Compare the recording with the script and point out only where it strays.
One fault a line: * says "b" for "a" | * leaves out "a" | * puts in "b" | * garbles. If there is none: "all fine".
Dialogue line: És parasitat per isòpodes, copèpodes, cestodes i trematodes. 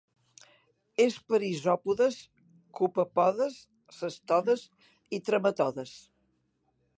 * leaves out "parasitat"